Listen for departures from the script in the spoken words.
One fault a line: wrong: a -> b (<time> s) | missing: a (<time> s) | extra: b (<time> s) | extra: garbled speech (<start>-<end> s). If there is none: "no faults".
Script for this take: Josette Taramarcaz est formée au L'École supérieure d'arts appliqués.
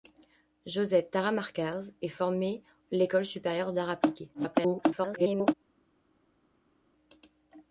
missing: au (2.6 s)
extra: garbled speech (4.3-5.5 s)